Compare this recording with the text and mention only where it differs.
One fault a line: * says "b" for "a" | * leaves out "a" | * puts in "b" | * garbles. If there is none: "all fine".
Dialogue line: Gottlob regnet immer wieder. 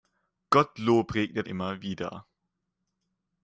all fine